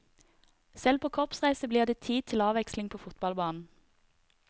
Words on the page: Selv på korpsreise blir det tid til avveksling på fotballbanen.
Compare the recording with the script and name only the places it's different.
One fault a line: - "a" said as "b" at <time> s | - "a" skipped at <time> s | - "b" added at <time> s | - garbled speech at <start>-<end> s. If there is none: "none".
none